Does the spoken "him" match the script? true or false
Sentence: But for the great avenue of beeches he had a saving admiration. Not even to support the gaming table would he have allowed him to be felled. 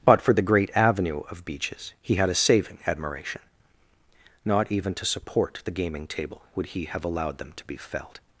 false